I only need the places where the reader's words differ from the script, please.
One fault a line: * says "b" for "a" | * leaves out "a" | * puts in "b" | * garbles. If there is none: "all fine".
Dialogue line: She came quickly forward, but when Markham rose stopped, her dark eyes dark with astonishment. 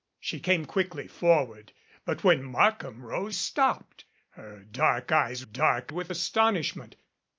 all fine